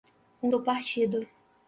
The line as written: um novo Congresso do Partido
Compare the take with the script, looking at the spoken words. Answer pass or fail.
fail